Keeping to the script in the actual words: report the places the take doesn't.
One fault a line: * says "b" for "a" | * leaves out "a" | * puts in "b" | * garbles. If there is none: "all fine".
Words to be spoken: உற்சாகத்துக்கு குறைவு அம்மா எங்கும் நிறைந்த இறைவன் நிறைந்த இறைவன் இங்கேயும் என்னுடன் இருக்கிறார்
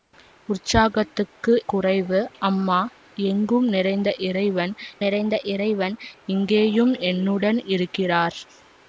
all fine